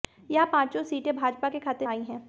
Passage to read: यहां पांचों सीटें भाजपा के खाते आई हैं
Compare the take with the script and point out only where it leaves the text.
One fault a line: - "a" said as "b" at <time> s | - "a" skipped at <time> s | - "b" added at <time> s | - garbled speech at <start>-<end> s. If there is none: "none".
none